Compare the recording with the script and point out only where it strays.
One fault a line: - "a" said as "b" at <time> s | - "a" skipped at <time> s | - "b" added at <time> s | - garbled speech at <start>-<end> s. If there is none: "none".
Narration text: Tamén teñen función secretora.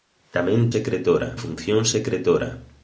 - "teñen" said as "secretora" at 0.7 s